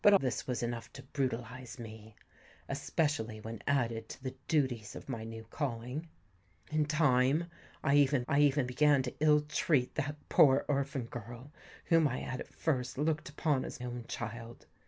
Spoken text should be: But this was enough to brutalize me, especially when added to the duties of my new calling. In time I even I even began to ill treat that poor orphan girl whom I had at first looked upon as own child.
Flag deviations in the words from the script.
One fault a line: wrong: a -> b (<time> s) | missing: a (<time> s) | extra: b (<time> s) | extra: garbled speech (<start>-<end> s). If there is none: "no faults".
no faults